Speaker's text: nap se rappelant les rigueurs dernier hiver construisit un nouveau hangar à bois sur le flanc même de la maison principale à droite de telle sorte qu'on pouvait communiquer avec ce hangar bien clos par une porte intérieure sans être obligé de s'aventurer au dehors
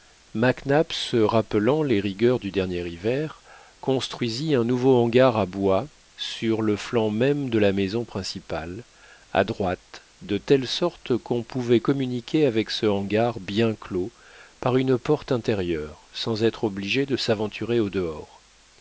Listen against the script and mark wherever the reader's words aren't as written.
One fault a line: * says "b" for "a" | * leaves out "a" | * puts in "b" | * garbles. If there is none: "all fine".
* puts in "du"